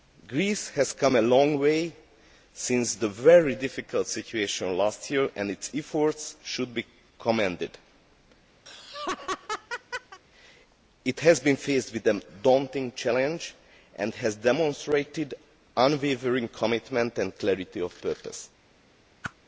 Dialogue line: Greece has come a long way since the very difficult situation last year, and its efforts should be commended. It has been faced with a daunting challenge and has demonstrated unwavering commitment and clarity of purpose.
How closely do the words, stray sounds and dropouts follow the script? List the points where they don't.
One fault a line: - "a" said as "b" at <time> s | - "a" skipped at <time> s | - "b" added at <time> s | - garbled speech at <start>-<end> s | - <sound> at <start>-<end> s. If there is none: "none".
- laugh at 8.7-10.2 s
- whoosh at 19.2-19.3 s